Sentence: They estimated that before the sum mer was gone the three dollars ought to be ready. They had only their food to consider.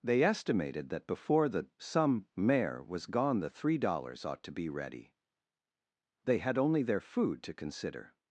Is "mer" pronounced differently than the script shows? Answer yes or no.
yes